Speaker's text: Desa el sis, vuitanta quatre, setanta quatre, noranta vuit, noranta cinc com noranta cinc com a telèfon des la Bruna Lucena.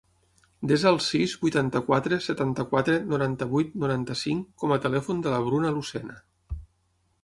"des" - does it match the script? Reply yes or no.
no